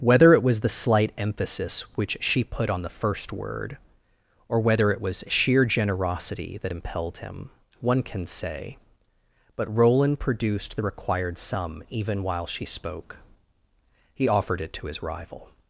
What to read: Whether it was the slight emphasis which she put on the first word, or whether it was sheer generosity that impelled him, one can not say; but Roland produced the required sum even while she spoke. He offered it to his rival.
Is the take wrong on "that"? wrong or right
right